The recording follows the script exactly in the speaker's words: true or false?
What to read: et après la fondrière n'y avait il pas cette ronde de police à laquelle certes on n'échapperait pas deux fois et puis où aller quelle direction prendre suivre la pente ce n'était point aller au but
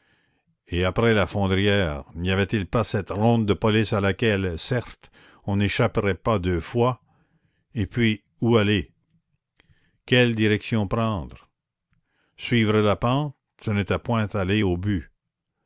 true